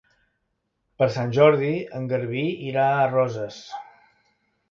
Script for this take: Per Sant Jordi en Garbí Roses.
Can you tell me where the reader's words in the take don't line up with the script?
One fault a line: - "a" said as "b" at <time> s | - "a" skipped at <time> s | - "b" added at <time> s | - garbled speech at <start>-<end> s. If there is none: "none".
- "irà a" added at 2.7 s